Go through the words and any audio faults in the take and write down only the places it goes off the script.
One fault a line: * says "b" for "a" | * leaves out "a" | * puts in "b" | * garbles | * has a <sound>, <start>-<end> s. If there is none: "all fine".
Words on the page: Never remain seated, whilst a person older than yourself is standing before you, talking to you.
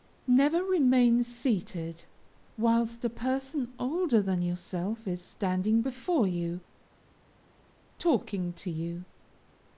all fine